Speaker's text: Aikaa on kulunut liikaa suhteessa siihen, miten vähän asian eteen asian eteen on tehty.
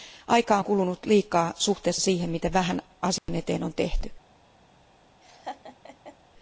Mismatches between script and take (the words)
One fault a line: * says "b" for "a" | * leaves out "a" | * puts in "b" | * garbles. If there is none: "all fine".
* leaves out "asian eteen"